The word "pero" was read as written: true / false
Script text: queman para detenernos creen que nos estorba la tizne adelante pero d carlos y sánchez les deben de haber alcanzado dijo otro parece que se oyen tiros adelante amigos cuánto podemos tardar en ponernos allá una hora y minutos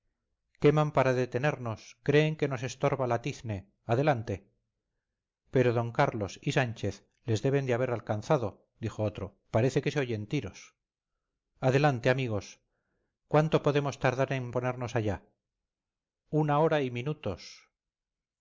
true